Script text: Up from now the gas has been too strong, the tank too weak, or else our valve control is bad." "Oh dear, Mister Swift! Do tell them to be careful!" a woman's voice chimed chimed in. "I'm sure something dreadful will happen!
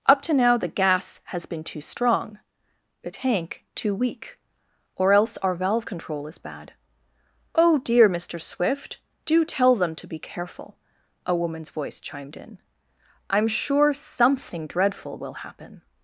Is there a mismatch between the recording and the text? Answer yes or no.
yes